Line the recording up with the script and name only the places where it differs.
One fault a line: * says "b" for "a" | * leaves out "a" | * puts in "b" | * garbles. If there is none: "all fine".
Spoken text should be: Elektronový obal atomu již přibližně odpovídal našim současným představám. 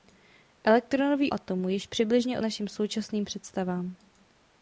* leaves out "obal"
* leaves out "odpovídal"